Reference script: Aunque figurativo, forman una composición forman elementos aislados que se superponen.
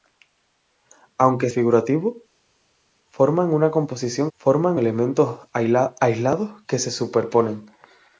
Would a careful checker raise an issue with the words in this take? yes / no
no